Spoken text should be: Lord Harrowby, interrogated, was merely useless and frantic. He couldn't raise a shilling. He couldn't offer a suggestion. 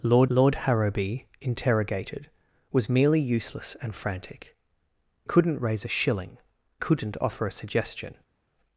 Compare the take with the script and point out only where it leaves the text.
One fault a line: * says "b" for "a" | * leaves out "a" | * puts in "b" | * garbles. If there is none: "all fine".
* puts in "lord"
* leaves out "He"
* leaves out "He"